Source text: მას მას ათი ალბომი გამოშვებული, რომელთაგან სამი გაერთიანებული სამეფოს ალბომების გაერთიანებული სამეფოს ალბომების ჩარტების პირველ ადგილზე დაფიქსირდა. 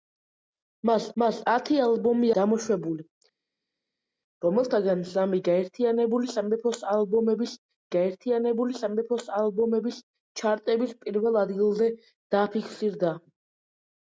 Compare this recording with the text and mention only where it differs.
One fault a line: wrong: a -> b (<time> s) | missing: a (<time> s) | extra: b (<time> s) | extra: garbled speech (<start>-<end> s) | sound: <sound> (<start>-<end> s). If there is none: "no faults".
no faults